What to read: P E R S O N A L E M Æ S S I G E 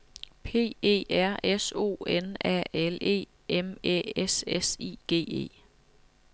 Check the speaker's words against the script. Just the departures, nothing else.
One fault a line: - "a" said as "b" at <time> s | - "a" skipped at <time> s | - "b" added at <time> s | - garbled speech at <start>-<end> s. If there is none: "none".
none